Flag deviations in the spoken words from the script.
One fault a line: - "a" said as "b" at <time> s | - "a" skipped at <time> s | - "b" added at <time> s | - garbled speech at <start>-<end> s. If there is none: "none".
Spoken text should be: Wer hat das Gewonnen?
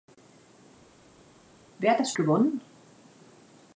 none